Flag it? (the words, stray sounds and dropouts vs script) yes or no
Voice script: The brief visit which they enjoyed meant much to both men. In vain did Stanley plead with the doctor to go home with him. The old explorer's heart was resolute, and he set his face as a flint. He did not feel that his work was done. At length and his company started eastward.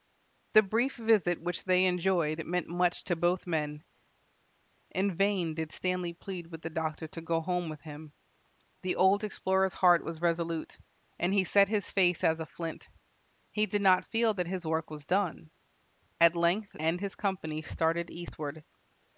no